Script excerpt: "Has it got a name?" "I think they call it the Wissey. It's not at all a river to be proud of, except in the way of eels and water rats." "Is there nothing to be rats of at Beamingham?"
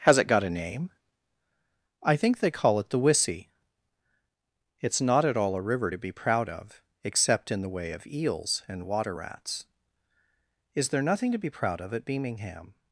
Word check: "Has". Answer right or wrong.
right